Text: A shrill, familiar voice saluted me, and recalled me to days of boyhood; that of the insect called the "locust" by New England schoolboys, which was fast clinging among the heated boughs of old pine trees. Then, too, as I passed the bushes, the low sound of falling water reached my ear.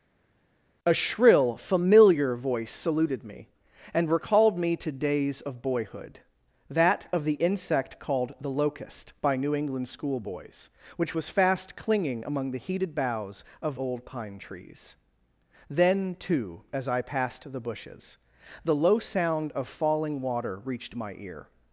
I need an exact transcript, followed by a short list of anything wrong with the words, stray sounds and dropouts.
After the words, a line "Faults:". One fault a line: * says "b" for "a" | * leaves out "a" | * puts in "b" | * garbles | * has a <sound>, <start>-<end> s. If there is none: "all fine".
A shrill, familiar voice saluted me, and recalled me to days of boyhood; that of the insect called the "locust" by New England schoolboys, which was fast clinging among the heated boughs of old pine trees. Then, too, as I passed the bushes, the low sound of falling water reached my ear.
Faults:
all fine